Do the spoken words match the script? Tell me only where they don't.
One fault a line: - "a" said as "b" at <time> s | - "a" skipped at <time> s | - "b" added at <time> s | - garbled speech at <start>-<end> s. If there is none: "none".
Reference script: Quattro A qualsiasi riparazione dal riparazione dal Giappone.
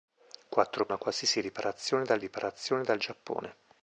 none